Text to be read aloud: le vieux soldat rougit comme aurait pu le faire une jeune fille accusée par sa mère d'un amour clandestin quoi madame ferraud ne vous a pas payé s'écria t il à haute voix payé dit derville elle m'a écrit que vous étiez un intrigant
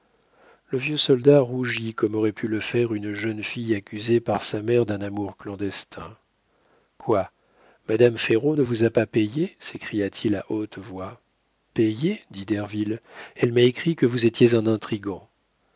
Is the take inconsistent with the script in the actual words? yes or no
no